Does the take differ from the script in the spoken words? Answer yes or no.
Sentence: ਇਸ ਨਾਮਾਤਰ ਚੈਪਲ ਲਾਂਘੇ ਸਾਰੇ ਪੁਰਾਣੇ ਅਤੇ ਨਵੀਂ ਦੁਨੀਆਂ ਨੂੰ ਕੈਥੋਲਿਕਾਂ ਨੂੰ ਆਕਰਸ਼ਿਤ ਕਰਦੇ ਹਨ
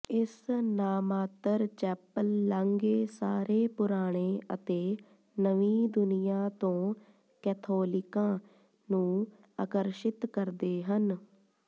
yes